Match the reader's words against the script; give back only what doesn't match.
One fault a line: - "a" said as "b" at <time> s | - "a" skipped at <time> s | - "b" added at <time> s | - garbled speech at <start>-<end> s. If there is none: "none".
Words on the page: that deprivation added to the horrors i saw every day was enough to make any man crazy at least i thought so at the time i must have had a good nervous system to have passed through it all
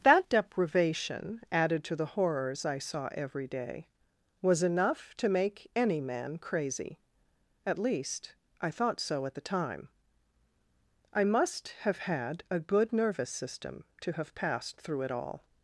none